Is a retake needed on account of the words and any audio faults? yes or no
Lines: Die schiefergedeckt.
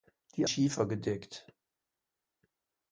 no